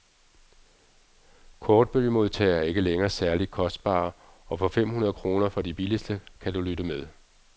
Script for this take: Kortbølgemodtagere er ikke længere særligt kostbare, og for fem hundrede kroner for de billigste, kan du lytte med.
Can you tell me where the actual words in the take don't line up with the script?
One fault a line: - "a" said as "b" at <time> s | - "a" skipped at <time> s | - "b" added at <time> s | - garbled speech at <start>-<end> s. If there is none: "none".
none